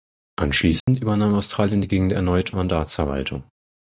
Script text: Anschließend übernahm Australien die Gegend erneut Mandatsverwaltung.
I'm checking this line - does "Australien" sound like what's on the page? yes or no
yes